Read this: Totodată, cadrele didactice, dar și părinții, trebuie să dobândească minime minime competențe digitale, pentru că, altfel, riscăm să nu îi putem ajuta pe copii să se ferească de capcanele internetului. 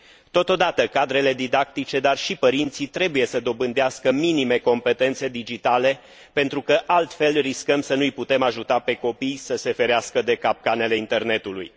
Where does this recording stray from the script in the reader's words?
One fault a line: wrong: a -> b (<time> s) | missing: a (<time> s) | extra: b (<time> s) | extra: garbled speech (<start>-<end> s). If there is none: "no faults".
missing: minime (4.6 s)